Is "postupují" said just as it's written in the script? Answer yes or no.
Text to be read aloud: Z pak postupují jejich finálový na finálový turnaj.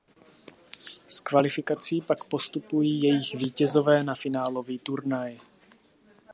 yes